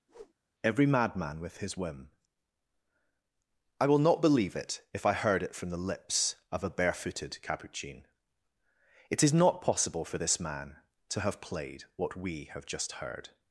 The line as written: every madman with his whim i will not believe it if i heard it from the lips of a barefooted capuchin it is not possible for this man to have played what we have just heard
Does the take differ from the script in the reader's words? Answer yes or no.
no